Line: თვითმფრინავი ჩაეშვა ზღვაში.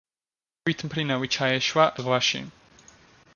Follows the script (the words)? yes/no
yes